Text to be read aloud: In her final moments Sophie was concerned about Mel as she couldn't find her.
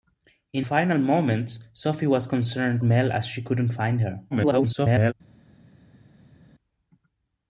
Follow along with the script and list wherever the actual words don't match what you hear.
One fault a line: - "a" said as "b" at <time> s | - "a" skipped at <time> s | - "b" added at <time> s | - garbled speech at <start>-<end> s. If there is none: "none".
- "her" skipped at 0.7 s
- "about" skipped at 2.8 s
- garbled speech at 4.3-5.1 s